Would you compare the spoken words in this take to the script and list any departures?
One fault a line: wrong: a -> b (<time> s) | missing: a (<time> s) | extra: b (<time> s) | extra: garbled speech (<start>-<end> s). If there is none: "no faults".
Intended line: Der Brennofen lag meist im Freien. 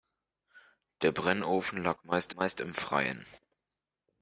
extra: meist (2.3 s)